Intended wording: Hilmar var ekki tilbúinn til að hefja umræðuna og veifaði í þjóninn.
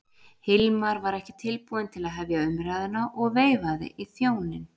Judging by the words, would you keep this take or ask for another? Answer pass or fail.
pass